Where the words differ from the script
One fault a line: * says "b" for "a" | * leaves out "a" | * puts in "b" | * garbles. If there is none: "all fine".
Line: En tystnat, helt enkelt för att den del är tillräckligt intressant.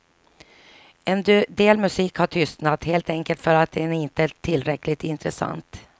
* puts in "del musik har"
* says "inte" for "del"